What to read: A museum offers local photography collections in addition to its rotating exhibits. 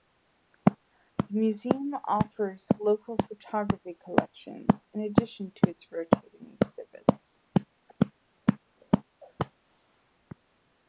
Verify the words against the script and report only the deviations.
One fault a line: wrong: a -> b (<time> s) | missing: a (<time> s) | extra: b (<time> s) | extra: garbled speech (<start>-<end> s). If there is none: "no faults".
wrong: A -> The (0.7 s)